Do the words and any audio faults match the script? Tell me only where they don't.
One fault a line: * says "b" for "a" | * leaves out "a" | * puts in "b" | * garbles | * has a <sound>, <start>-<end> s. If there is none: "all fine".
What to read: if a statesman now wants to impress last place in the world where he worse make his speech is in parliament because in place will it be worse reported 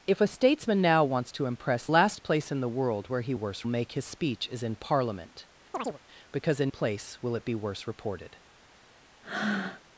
* has a chirp, 5.7-6.0 s
* has a breath, 9.2-9.8 s